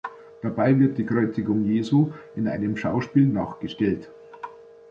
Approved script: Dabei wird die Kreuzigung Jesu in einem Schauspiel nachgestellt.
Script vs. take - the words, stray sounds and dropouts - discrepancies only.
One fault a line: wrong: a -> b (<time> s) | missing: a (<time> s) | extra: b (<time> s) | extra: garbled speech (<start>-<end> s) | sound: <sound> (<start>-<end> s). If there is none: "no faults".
no faults